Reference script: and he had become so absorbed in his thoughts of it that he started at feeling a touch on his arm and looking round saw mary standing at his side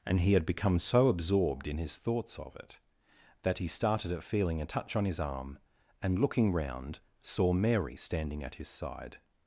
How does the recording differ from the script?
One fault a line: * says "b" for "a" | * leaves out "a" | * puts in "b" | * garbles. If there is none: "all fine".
all fine